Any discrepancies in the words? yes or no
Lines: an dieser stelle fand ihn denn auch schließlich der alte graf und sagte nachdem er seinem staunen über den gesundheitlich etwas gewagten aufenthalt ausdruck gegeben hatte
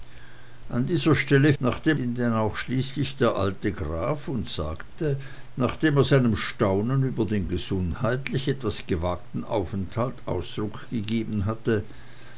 yes